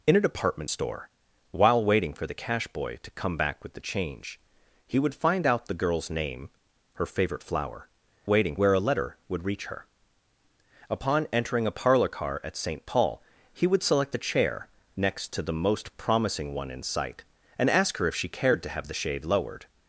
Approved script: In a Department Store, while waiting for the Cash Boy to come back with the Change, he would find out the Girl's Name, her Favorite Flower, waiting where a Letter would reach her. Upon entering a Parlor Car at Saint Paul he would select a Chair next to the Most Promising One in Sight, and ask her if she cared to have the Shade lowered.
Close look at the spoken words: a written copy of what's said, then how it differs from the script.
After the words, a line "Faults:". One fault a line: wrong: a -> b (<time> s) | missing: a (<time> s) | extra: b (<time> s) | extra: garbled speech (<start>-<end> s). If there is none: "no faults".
In a Department Store, while waiting for the Cash Boy to come back with the Change, he would find out the Girl's Name, her Favorite Flower, waiting where a Letter would reach her. Upon entering a Parlor Car at Saint Paul he would select a Chair next to the Most Promising One in Sight, and ask her if she cared to have the Shade lowered.
Faults:
no faults